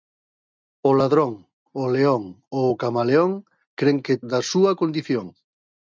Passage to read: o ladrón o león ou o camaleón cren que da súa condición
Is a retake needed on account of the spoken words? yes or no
no